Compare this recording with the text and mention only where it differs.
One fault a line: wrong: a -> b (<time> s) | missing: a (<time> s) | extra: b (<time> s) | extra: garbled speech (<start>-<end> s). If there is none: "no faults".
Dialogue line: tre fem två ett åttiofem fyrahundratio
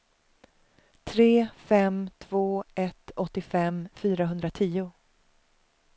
no faults